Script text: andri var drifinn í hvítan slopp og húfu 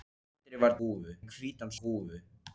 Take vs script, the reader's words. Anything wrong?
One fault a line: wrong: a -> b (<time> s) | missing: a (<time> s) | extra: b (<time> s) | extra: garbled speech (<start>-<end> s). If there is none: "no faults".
wrong: drifinn -> húfu (0.8 s)
missing: slopp (1.7 s)